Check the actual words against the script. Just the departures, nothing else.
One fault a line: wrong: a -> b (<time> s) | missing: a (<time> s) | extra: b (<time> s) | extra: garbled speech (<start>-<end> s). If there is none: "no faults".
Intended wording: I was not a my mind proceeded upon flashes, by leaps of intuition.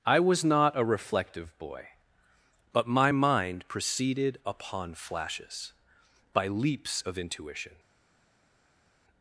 extra: reflective boy but (0.8 s)